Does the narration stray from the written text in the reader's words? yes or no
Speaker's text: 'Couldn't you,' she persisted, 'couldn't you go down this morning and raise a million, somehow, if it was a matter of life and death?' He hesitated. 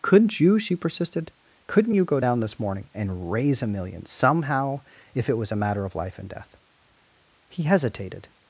no